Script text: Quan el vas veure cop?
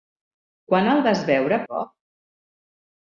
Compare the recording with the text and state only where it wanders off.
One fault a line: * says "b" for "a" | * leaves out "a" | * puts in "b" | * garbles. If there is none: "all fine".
all fine